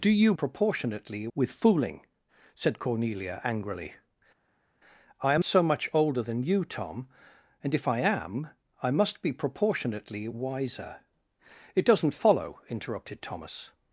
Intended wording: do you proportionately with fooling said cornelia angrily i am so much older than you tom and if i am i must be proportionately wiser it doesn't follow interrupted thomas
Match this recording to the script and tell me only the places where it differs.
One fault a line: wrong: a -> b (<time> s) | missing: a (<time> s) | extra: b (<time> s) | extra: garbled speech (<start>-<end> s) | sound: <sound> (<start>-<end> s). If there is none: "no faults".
no faults